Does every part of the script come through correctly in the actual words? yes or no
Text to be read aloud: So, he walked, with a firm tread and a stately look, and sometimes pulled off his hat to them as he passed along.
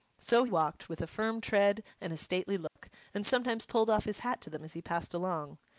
no